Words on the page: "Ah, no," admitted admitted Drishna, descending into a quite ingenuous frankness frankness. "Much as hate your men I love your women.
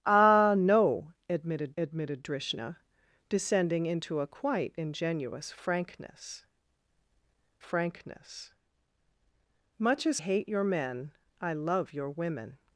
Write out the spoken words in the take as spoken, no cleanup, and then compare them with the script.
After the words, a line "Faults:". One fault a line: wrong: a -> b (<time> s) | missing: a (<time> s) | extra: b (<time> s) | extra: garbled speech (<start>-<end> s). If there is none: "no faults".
"Ah, no," admitted admitted Drishna, descending into a quite ingenuous frankness frankness. "Much as hate your men I love your women.
Faults:
no faults